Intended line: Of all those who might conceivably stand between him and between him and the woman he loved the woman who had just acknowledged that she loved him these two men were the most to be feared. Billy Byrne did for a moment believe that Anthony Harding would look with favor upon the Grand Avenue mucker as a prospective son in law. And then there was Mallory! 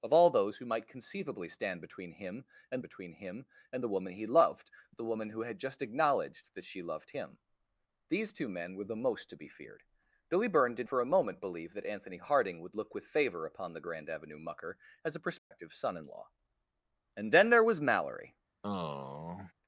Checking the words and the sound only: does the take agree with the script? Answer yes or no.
no